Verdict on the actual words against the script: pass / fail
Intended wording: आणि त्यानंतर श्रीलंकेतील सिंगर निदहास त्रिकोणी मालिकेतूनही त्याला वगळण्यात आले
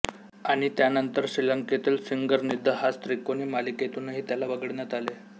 pass